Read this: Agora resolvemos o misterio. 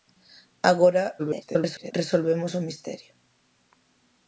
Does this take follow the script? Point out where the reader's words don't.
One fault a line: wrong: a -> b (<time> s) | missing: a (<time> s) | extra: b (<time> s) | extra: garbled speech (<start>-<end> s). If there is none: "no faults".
extra: garbled speech (1.2-1.9 s)